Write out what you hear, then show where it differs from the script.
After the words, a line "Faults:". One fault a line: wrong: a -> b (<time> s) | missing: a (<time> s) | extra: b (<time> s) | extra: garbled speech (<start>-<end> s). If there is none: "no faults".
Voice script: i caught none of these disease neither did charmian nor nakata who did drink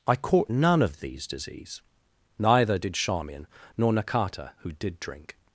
i caught none of these disease neither did charmian nor nakata who did drink
Faults:
no faults